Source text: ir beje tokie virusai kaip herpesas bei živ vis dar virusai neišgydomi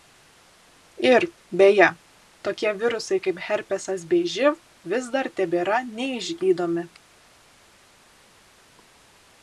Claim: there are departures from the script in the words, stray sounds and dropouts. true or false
true